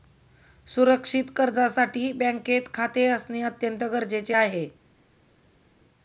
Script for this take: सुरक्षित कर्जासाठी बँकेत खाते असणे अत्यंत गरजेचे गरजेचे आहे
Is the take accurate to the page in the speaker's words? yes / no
no